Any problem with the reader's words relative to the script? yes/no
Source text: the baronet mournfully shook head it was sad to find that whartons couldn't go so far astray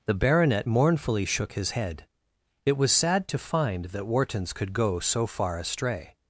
yes